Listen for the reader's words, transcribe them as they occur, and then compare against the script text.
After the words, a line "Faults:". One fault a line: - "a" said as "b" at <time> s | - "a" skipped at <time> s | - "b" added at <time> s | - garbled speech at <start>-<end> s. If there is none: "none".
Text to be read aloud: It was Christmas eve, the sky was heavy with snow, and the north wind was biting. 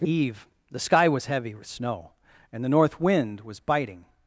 It eve, the sky was heavy with snow, and the north wind was biting.
Faults:
- "was Christmas" skipped at 0.1 s